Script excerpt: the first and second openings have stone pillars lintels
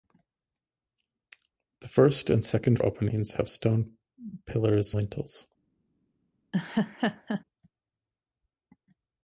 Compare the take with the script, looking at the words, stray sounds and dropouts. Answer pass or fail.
fail